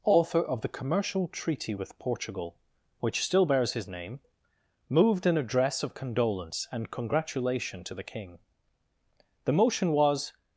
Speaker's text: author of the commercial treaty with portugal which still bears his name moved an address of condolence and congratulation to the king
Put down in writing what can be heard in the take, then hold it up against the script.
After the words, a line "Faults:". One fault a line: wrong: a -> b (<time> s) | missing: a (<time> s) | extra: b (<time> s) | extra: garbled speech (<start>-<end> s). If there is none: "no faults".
author of the commercial treaty with portugal which still bears his name moved an address of condolence and congratulation to the king the motion was
Faults:
extra: the motion was (9.4 s)